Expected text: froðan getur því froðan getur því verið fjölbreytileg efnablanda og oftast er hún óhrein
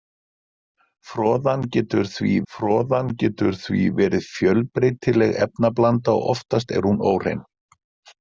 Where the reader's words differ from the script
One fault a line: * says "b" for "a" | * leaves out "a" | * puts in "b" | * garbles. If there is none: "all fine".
all fine